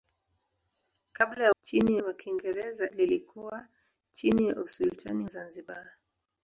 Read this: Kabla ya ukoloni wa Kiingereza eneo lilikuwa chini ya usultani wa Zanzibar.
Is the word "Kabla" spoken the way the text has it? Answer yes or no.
yes